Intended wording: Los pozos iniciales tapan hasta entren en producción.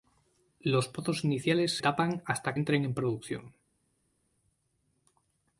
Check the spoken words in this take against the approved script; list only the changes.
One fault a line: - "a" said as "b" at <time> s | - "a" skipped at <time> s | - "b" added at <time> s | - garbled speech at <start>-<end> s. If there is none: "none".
none